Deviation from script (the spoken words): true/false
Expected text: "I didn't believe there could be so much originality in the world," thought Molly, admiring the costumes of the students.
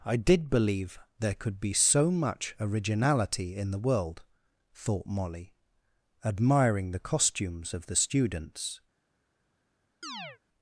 true